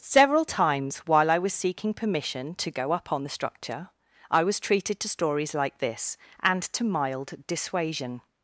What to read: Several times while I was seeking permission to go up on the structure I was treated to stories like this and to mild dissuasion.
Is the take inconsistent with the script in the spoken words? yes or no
no